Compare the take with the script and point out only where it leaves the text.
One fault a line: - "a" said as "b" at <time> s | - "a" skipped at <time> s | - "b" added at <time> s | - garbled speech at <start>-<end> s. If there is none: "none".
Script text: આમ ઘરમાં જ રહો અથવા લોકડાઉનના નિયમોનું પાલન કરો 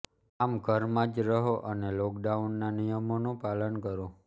- "અથવા" said as "અને" at 1.7 s